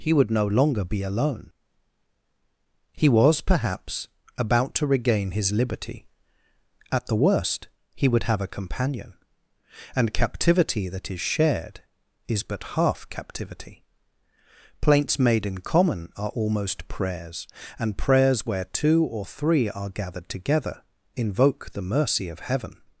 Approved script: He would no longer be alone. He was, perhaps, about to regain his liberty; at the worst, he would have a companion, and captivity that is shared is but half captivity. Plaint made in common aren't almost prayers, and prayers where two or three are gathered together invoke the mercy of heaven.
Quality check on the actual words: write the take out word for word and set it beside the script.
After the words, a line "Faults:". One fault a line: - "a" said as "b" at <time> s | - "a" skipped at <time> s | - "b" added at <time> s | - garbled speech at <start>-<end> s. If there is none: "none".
He would no longer be alone. He was, perhaps, about to regain his liberty; at the worst, he would have a companion, and captivity that is shared is but half captivity. Plaints made in common are almost prayers, and prayers where two or three are gathered together invoke the mercy of heaven.
Faults:
- "Plaint" said as "Plaints" at 14.8 s
- "aren't" said as "are" at 16.2 s